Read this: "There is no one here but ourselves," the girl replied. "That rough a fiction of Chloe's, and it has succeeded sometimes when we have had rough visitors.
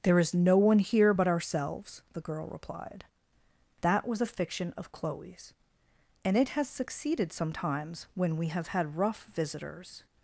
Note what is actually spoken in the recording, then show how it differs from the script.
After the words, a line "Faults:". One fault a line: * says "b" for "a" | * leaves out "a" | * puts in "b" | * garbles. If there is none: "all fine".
"There is no one here but ourselves," the girl replied. "That was a fiction of Chloe's, and it has succeeded sometimes when we have had rough visitors.
Faults:
* says "was" for "rough"